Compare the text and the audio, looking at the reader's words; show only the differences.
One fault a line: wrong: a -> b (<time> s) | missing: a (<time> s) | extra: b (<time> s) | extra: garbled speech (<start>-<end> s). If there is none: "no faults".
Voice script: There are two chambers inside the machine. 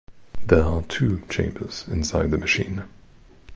no faults